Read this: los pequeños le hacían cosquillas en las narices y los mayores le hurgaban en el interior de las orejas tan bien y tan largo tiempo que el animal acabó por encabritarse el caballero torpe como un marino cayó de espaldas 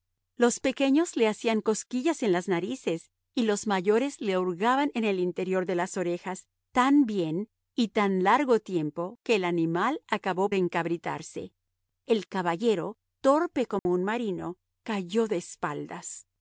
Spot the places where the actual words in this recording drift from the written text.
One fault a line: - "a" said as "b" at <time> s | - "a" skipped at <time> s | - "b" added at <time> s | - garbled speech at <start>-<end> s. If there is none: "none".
- "por" skipped at 10.5 s